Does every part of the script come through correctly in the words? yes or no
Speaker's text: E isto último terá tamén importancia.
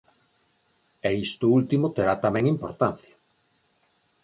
yes